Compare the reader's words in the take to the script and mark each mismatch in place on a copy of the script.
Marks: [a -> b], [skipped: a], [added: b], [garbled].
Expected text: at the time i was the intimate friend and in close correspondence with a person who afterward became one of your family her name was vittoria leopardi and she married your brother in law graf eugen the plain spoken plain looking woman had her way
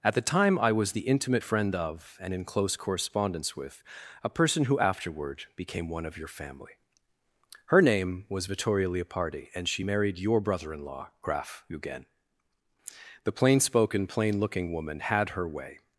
at the time i was the intimate friend [added: of] and in close correspondence with a person who afterward became one of your family her name was vittoria leopardi and she married your brother in law graf eugen the plain spoken plain looking woman had her way